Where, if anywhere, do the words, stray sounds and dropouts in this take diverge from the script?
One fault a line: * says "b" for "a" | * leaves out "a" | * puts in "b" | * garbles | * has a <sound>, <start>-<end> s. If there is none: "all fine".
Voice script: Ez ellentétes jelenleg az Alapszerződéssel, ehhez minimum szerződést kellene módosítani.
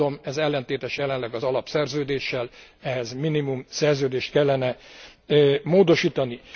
all fine